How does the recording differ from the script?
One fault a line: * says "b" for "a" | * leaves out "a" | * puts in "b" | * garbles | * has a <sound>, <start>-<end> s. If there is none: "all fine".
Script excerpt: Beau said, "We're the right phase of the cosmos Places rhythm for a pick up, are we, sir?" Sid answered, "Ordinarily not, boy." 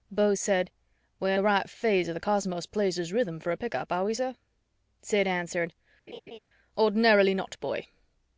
* has a laugh, 6.1-6.4 s